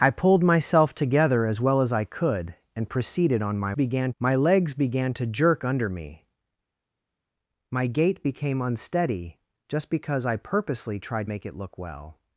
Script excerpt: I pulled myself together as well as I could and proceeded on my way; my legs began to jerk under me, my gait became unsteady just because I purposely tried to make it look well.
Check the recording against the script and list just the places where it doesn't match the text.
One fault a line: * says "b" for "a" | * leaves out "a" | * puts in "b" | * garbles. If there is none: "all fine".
* says "began" for "way"
* leaves out "to"